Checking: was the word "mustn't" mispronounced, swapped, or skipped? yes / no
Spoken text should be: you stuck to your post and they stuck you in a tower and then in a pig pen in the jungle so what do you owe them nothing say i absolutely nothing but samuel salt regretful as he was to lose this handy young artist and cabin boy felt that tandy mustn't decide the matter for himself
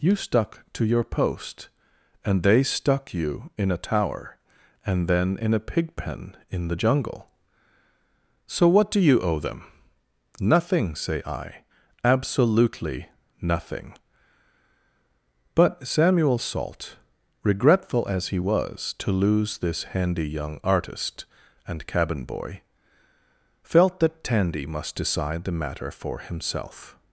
yes